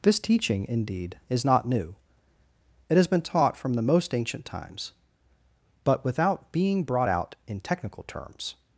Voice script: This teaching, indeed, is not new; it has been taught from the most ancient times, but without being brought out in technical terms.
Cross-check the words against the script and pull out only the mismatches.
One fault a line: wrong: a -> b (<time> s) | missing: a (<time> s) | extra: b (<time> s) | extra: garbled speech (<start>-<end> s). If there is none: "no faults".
no faults